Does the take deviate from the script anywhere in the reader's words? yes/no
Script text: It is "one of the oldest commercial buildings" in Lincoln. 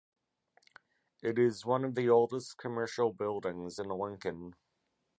no